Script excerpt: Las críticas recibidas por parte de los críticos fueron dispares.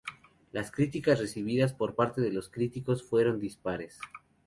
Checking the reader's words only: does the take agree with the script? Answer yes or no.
yes